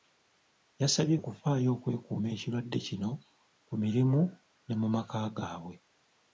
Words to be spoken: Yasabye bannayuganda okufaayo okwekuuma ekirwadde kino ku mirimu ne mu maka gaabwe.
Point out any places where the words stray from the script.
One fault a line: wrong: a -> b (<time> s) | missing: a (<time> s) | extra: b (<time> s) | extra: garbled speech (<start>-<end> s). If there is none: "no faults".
missing: bannayuganda (1.1 s)